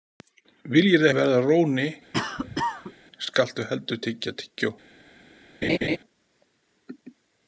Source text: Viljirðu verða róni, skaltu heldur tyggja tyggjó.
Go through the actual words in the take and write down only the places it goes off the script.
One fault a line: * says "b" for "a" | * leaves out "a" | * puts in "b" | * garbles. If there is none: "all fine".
all fine